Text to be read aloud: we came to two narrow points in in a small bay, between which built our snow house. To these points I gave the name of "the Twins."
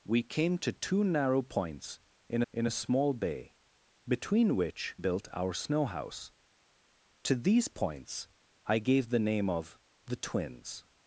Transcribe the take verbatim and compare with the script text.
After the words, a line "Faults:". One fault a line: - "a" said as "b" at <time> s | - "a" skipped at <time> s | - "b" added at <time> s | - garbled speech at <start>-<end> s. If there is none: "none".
we came to two narrow points in in a small bay, between which built our snow house. To these points I gave the name of "the Twins."
Faults:
none